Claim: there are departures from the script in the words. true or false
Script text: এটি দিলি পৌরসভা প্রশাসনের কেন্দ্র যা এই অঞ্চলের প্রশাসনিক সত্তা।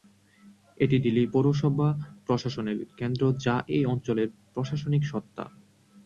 false